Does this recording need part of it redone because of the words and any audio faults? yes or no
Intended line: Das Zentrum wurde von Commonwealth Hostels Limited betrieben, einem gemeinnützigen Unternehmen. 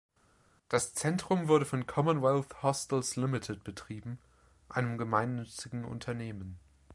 no